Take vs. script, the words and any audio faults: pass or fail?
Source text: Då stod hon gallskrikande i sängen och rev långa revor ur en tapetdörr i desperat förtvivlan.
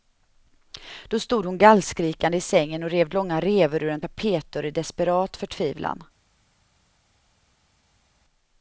pass